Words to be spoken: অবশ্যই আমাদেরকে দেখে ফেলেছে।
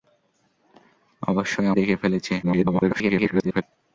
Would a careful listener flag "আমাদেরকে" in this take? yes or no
yes